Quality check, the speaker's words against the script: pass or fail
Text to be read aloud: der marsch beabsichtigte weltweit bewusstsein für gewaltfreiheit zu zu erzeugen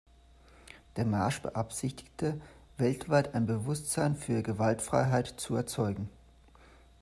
fail